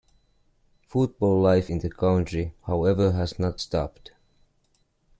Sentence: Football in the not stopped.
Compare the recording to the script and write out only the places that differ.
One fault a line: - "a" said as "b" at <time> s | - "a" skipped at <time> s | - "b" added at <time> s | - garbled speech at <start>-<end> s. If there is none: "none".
- "life" added at 1.4 s
- "country however has" added at 1.9 s